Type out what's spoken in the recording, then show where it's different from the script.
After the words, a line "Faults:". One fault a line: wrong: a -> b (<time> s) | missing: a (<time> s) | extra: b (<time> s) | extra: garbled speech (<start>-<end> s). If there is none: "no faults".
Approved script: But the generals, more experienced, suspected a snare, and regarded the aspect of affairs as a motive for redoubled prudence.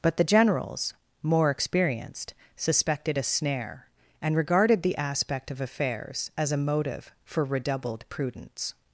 But the generals, more experienced, suspected a snare, and regarded the aspect of affairs as a motive for redoubled prudence.
Faults:
no faults